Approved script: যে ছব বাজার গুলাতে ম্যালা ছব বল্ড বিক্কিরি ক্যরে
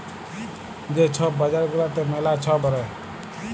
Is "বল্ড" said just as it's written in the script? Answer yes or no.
no